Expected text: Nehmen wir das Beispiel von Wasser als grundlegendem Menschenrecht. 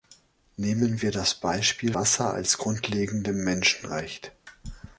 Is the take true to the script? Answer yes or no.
no